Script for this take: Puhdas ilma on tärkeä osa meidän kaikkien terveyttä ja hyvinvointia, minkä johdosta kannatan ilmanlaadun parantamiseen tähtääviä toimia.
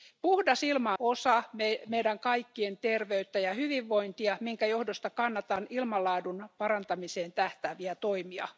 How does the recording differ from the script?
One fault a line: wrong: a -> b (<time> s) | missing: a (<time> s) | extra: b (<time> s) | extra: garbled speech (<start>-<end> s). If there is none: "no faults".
missing: on tärkeä (0.9 s)